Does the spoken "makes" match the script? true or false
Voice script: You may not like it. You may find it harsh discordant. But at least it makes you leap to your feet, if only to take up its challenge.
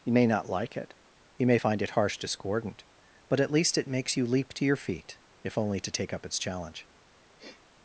true